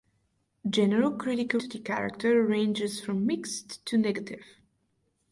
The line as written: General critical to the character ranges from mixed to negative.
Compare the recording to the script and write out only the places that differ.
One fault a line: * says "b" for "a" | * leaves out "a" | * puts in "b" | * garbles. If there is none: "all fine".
all fine